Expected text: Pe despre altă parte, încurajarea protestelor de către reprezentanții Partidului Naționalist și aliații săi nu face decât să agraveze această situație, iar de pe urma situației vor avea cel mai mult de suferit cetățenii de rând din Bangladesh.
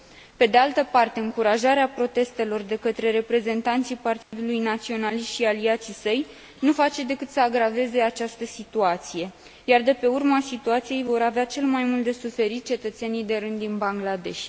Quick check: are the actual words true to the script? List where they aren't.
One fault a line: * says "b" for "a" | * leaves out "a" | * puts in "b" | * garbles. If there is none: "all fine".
* says "de" for "despre"